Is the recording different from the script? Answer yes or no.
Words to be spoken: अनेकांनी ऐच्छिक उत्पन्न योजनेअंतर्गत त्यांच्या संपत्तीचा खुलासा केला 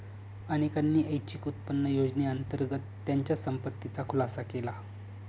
no